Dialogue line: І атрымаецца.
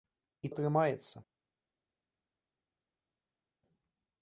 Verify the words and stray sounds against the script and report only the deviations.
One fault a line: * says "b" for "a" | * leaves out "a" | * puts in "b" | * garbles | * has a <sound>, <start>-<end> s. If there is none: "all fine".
all fine